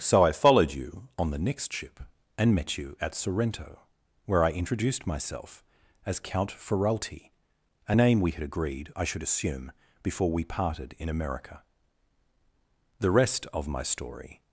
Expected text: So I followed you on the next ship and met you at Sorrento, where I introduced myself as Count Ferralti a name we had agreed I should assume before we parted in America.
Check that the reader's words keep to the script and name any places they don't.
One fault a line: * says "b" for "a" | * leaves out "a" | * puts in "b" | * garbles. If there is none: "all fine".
* puts in "The rest of my story"